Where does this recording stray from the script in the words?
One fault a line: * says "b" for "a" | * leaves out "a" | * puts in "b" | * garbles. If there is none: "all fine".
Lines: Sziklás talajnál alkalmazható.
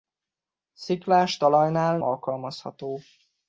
all fine